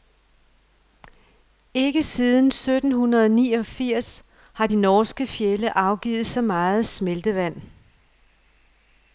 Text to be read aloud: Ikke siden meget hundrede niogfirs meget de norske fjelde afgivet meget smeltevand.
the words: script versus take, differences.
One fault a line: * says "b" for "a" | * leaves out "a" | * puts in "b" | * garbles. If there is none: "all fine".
* says "sytten" for "meget"
* says "har" for "meget"
* puts in "så"